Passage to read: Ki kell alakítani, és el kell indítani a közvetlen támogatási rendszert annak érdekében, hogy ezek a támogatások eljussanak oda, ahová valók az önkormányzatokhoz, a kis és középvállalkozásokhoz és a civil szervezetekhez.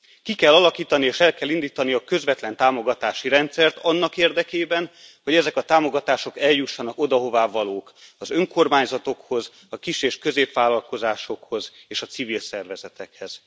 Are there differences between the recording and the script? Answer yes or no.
no